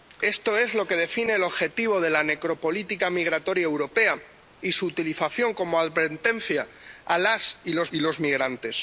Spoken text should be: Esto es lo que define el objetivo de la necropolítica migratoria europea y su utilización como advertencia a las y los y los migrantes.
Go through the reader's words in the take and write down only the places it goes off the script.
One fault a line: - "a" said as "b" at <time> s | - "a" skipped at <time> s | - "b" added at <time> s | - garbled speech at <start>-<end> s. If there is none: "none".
none